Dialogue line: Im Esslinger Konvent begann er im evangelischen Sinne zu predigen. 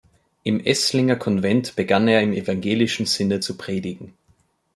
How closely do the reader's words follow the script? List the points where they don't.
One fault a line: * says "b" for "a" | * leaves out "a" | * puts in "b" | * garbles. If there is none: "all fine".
all fine